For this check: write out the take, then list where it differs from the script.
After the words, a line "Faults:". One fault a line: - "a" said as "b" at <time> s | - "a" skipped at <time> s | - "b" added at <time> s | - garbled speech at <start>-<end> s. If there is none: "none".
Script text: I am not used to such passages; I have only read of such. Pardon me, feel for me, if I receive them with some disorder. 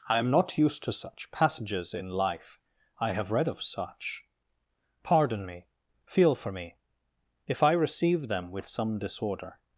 I am not used to such passages in life; I have read of such. Pardon me, feel for me, if I receive them with some disorder.
Faults:
- "in life" added at 1.9 s
- "only" skipped at 3.3 s